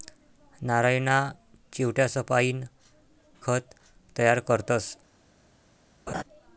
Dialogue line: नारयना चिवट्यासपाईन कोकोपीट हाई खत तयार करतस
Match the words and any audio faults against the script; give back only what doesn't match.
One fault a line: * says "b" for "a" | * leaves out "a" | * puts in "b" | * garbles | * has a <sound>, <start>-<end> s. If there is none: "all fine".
* leaves out "कोकोपीट हाई"
* has a laugh, 6.1-6.2 s